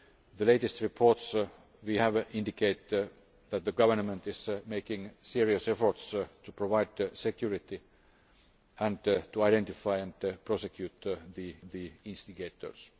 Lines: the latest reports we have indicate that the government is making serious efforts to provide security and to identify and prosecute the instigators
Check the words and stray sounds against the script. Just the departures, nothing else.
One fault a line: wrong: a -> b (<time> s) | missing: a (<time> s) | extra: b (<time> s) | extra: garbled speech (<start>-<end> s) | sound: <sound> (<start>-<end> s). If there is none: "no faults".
extra: the (11.7 s)